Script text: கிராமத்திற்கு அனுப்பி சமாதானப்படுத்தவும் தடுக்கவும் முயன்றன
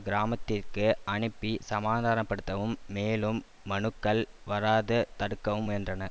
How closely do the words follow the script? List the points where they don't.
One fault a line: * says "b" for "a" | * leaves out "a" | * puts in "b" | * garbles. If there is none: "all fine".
* puts in "மேலும் மனுக்கள் வராது"